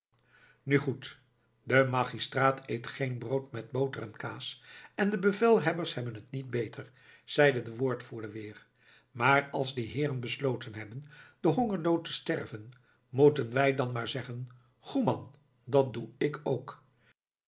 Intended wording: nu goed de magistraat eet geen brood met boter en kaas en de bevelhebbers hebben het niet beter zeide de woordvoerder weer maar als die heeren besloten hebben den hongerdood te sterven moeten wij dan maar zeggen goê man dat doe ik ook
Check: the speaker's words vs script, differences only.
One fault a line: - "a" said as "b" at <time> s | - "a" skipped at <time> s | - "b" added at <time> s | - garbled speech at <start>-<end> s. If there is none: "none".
none